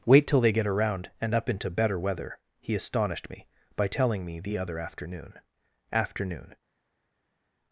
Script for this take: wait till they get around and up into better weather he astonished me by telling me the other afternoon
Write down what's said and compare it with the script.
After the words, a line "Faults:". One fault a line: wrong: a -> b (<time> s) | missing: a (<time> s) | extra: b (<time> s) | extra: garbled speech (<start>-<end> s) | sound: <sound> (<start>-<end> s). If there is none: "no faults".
wait till they get around and up into better weather he astonished me by telling me the other afternoon afternoon
Faults:
extra: afternoon (5.9 s)